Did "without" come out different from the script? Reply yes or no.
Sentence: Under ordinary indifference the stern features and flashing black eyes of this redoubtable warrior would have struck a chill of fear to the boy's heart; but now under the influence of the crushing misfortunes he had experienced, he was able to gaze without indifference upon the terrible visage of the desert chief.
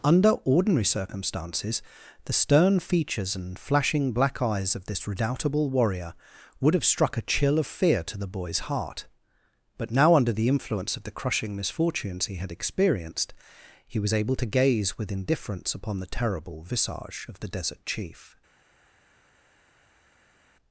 yes